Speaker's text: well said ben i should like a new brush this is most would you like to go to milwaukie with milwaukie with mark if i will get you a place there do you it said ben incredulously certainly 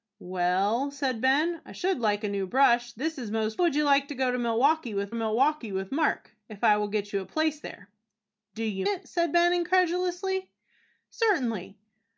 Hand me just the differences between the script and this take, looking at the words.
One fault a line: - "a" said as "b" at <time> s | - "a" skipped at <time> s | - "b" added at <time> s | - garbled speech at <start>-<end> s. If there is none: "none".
none